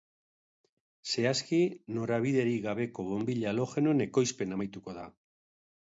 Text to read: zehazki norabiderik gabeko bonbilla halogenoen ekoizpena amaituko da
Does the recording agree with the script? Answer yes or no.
yes